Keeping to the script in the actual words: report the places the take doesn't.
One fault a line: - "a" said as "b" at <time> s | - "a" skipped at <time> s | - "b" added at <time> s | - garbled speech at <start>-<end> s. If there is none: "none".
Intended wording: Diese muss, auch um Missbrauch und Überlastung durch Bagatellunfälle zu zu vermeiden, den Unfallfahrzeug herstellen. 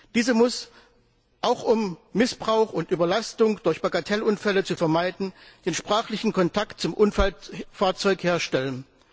- "zu" skipped at 4.8 s
- "sprachlichen Kontakt zum" added at 5.7 s